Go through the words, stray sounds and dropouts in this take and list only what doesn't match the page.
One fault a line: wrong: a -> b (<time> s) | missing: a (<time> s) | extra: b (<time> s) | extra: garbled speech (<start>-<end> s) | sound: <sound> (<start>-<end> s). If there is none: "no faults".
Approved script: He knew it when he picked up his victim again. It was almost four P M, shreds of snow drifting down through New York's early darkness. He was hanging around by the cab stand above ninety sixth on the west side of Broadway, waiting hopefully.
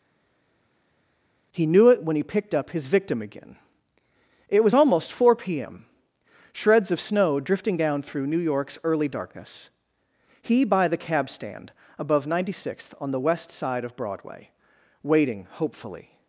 missing: was hanging around (10.6 s)